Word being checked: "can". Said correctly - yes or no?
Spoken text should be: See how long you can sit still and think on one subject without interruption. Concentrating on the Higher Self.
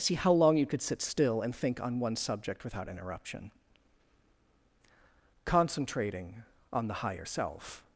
no